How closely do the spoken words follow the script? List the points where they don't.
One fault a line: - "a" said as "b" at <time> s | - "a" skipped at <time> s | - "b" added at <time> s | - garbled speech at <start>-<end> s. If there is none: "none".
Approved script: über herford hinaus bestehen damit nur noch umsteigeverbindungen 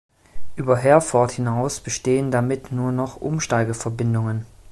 none